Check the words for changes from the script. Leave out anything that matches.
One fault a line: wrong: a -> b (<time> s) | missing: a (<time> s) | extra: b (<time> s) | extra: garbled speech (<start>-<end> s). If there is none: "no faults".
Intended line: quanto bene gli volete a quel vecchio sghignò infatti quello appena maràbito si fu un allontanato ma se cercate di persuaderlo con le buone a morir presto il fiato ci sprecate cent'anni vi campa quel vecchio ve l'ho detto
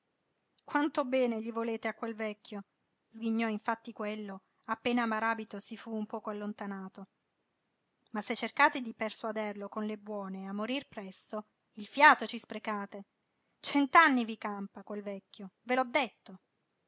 extra: poco (6.1 s)